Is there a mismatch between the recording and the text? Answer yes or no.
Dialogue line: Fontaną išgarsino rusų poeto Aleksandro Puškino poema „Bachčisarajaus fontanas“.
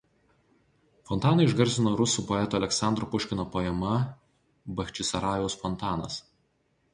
no